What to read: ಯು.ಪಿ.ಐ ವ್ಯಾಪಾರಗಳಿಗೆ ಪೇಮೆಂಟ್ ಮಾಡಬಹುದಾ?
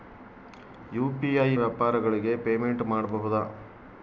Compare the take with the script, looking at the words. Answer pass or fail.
pass